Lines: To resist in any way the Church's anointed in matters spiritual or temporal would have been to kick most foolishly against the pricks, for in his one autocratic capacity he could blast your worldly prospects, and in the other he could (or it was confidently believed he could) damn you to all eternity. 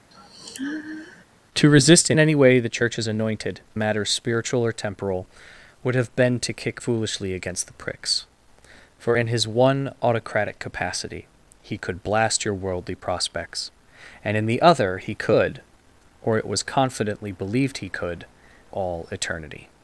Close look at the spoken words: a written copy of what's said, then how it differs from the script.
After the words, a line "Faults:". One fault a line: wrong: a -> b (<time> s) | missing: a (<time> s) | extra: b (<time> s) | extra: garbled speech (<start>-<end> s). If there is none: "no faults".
To resist in any way the Church's anointed matters spiritual or temporal would have been to kick foolishly against the pricks, for in his one autocratic capacity he could blast your worldly prospects, and in the other he could (or it was confidently believed he could) all eternity.
Faults:
missing: in (3.6 s)
missing: most (6.8 s)
missing: damn you to (18.3 s)